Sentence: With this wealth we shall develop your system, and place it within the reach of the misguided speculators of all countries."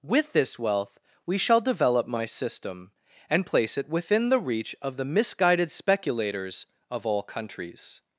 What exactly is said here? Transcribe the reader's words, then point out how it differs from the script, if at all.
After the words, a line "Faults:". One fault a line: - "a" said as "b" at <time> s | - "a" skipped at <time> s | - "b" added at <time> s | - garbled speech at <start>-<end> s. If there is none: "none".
With this wealth we shall develop my system, and place it within the reach of the misguided speculators of all countries."
Faults:
- "your" said as "my" at 2.1 s